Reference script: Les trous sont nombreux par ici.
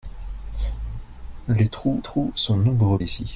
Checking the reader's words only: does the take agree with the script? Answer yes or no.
no